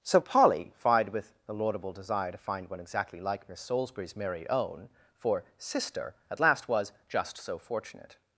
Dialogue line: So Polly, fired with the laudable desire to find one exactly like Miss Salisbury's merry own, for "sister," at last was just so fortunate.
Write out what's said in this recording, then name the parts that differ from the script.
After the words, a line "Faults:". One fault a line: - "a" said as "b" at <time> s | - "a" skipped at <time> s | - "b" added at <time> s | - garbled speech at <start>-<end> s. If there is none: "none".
So Polly, fired with the laudable desire to find one exactly like Miss Salisbury's merry own, for "sister," at last was just so fortunate.
Faults:
none